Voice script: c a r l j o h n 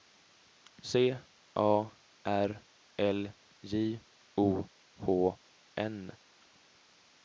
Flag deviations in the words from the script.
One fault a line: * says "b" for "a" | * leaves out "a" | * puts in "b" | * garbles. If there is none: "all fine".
all fine